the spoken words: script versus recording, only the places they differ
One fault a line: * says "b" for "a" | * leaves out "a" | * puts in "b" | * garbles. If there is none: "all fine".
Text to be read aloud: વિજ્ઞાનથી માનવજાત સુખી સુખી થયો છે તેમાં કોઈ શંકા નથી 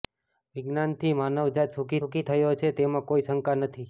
all fine